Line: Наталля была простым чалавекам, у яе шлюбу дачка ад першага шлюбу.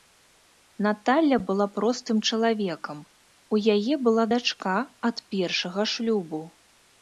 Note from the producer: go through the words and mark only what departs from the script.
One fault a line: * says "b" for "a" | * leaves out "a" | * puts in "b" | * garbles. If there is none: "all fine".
* says "была" for "шлюбу"